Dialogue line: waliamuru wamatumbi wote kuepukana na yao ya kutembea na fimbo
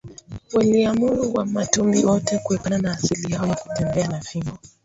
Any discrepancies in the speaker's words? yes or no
yes